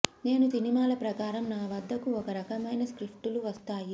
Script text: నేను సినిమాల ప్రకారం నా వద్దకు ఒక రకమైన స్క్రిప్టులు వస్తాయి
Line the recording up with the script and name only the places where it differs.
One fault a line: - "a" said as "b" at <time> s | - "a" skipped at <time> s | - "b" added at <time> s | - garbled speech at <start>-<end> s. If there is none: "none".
none